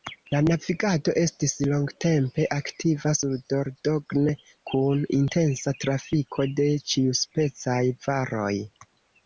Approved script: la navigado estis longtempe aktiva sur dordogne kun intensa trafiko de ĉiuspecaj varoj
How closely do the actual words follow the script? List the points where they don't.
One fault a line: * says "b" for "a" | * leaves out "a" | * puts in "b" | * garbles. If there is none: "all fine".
all fine